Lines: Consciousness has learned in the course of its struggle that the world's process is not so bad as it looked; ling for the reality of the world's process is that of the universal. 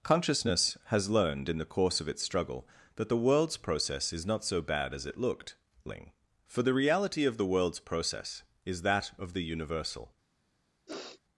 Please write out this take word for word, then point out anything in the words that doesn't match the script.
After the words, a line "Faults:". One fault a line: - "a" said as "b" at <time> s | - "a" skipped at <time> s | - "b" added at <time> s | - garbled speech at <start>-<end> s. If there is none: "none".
Consciousness has learned in the course of its struggle that the world's process is not so bad as it looked; ling for the reality of the world's process is that of the universal.
Faults:
none